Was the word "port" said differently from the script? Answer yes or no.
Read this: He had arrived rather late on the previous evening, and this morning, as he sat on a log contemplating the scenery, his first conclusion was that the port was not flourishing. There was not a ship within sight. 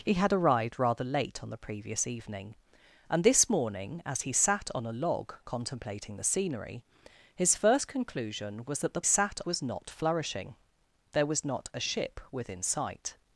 yes